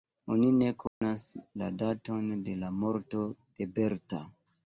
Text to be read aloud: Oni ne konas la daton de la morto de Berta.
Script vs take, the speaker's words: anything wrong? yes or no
no